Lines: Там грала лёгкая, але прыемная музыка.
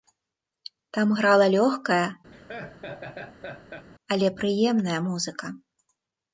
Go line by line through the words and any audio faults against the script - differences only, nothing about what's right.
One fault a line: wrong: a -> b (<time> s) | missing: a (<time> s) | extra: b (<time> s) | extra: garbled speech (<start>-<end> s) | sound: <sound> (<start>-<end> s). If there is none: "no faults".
sound: laugh (2.3-3.9 s)